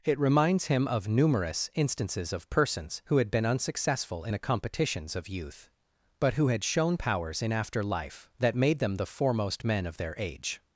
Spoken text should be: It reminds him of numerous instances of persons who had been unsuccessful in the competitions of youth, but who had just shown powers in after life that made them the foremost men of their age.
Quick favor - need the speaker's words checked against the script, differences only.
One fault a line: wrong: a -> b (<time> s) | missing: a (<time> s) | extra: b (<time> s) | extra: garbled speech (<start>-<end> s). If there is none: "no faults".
missing: just (6.6 s)